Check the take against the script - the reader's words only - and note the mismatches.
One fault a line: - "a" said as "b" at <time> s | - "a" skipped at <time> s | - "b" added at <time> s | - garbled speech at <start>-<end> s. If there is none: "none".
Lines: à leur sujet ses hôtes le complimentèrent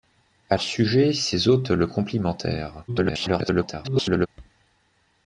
- "leur" skipped at 0.6 s
- garbled speech at 2.9-4.3 s